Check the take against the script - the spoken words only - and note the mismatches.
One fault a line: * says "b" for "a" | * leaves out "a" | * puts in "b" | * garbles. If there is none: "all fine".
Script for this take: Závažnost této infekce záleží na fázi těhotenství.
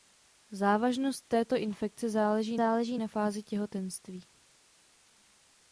* puts in "záleží"